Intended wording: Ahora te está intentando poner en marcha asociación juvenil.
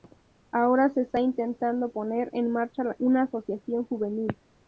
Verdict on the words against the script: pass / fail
fail